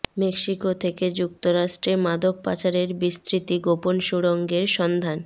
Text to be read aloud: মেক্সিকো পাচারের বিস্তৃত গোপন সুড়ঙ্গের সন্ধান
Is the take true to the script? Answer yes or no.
no